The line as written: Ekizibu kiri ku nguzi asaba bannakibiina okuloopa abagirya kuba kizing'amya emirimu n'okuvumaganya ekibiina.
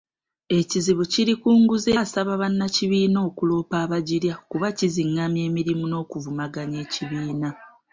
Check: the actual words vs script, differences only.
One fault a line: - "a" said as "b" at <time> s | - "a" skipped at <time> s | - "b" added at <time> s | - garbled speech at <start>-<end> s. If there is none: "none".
none